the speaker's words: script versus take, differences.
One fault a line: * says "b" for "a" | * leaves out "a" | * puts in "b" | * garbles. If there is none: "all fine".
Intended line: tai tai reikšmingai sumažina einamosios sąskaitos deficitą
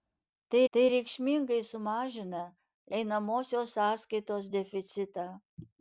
all fine